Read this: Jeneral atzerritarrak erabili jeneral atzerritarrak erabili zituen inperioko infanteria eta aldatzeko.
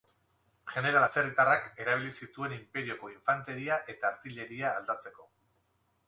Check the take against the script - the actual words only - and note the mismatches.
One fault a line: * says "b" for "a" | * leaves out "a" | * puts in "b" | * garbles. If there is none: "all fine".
* leaves out "jeneral atzerritarrak erabili"
* puts in "artilleria"